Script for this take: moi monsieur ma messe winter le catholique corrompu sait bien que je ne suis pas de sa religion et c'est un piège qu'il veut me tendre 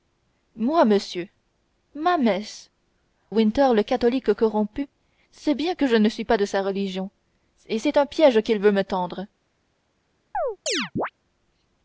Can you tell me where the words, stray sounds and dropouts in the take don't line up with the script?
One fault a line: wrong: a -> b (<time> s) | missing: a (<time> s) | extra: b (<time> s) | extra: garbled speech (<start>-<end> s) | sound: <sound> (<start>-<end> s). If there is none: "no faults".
sound: chirp (10.3-11.1 s)